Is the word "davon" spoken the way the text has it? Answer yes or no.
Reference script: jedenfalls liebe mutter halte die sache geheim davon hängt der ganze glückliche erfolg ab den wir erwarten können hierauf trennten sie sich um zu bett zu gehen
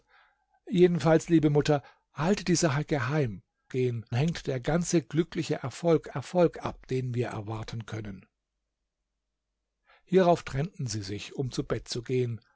no